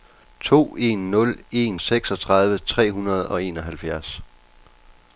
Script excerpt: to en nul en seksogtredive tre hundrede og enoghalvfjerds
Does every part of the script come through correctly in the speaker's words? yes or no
yes